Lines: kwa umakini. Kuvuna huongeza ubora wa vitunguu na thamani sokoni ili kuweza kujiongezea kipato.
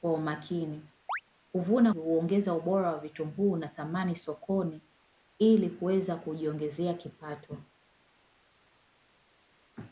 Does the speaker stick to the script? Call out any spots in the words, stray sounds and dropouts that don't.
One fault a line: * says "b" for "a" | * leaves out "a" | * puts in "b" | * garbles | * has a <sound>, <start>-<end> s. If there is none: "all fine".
* has a chirp, 1.1-1.2 s